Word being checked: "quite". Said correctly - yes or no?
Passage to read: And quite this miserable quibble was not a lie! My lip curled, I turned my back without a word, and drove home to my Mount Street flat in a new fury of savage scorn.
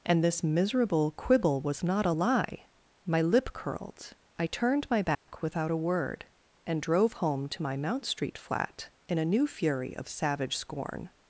no